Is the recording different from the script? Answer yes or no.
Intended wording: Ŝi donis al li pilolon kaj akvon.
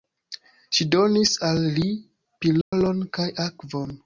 no